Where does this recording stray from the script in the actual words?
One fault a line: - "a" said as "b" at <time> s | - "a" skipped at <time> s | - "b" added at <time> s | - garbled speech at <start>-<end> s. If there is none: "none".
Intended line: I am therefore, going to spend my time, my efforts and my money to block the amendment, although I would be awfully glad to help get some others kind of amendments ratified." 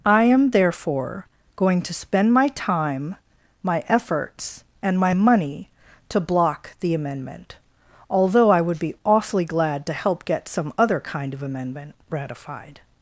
- "others" said as "other" at 10.8 s
- "amendments" said as "amendment" at 11.4 s